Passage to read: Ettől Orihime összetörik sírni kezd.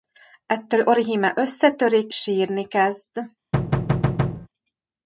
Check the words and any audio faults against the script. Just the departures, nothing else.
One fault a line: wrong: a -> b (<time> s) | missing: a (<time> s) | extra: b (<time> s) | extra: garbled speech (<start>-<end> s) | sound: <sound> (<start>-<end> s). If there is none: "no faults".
sound: thud (3.5-4.5 s)